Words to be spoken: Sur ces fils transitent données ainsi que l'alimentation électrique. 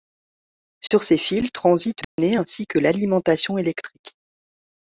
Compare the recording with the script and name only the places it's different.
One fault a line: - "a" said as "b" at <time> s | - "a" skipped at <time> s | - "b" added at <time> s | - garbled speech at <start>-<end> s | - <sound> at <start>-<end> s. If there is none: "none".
- dropout at 0.9-0.9 s
- dropout at 2.0-2.2 s